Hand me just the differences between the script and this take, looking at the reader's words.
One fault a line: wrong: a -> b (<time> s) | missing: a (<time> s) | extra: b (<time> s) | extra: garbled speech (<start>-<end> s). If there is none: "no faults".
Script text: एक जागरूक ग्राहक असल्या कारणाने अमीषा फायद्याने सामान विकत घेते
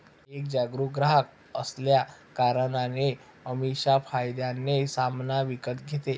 no faults